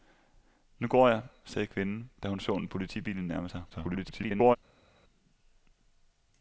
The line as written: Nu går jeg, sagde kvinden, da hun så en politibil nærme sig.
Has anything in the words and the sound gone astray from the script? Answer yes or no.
yes